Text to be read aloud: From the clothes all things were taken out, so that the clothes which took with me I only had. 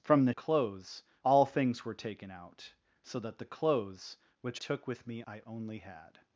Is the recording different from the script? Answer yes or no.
no